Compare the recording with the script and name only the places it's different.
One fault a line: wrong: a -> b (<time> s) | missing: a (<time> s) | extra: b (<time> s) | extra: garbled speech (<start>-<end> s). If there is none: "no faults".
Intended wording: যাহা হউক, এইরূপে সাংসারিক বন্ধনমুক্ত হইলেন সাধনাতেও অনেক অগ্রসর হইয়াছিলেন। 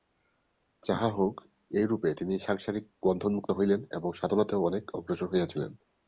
extra: তিনি (2.1 s)
extra: এবং (3.9 s)